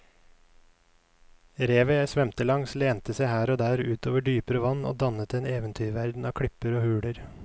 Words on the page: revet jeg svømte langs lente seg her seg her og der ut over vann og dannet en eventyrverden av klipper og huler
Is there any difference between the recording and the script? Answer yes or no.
yes